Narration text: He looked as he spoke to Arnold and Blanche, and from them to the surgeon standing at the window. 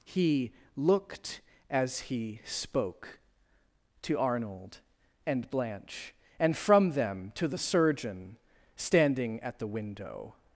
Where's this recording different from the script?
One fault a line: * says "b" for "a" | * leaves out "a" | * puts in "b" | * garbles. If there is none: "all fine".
all fine